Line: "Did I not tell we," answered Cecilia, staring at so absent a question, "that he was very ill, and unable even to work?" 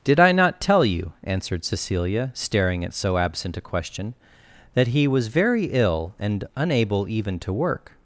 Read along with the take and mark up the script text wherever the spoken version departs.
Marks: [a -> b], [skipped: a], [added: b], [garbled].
"Did I not tell [we," -> you] answered Cecilia, staring at so absent a question, "that he was very ill, and unable even to work?"